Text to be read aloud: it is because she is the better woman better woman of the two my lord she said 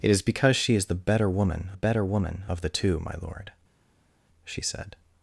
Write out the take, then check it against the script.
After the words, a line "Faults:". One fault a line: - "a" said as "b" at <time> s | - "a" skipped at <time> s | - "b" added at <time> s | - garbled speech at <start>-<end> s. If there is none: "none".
it is because she is the better woman better woman of the two my lord she said
Faults:
none